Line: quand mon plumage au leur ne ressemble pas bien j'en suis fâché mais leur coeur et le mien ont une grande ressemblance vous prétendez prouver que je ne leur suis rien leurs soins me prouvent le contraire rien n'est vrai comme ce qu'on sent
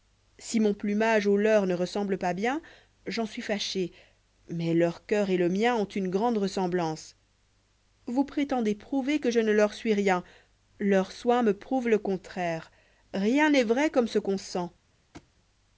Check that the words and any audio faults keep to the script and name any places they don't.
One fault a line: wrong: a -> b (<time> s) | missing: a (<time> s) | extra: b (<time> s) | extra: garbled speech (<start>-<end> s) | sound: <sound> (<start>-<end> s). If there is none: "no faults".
wrong: quand -> si (0.4 s)
sound: thud (15.1-15.3 s)